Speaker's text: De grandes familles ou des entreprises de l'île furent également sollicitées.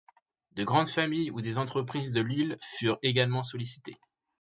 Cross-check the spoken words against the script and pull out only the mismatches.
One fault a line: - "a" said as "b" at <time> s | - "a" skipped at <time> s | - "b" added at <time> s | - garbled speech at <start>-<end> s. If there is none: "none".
none